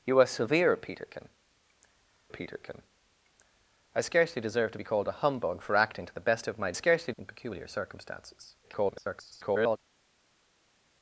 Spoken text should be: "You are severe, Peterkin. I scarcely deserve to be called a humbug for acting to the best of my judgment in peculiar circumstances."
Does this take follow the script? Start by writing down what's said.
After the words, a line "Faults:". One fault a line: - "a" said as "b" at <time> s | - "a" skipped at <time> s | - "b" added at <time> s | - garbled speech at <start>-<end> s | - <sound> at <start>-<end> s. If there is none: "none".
"You are severe, Peterkin Peterkin. I scarcely deserve to be called a humbug for acting to the best of my scarcely in peculiar circumstances." [garbled]
Faults:
- "Peterkin" added at 2.3 s
- "judgment" said as "scarcely" at 6.7 s
- garbled speech at 8.6-9.8 s